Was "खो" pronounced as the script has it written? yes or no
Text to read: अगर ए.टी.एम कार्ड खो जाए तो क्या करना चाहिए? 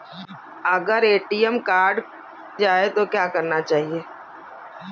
no